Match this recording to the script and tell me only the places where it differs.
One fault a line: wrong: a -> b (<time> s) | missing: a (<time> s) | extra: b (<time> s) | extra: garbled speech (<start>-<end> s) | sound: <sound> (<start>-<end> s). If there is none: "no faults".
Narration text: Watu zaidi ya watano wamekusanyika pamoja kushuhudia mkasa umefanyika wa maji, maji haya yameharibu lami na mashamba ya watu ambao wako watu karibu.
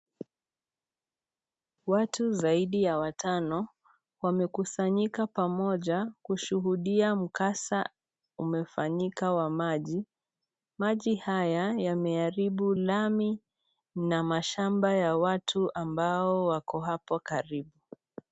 wrong: watu -> hapo (16.8 s)